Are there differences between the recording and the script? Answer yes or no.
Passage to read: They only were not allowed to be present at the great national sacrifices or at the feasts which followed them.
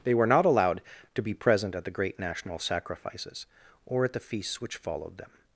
yes